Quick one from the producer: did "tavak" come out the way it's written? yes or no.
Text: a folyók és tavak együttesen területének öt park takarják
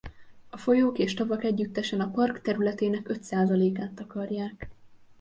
yes